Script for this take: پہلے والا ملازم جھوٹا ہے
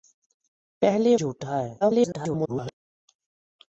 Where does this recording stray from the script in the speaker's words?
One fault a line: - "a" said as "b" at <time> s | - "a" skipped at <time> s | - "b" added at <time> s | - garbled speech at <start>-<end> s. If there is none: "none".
- "والا ملازم" skipped at 1.1 s
- garbled speech at 1.8-2.7 s